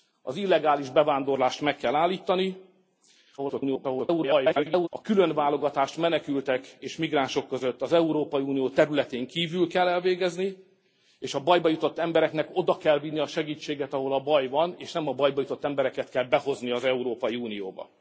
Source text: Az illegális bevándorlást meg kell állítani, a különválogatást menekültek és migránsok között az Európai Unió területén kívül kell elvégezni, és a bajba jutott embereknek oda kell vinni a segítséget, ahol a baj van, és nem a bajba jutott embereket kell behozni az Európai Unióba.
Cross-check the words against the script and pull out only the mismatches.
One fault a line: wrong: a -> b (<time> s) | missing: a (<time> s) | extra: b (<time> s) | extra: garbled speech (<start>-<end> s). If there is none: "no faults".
extra: garbled speech (3.4-4.9 s)